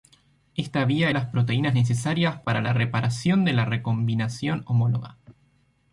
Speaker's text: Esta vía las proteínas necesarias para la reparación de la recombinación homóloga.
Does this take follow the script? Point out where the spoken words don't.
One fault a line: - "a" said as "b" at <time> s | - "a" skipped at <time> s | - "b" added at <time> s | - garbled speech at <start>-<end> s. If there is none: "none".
none